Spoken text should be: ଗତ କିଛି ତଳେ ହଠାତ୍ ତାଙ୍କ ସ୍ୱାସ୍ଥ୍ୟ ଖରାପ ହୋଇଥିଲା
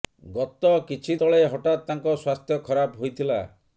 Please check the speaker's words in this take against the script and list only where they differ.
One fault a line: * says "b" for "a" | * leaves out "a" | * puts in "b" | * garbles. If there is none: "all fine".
all fine